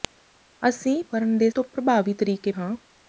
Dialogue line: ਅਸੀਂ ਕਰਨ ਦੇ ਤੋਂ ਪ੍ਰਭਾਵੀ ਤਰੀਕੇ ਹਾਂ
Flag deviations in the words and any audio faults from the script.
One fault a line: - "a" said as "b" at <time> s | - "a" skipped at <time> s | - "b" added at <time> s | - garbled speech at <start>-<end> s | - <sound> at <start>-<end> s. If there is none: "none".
none